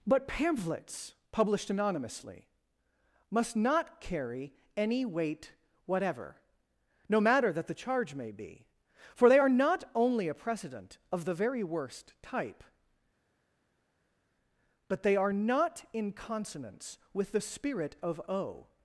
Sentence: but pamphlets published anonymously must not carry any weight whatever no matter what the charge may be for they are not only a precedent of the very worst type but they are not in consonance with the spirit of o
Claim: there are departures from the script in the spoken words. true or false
true